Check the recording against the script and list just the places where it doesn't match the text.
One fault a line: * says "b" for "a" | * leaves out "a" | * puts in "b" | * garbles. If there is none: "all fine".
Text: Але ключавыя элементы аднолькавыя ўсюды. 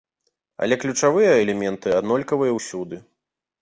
all fine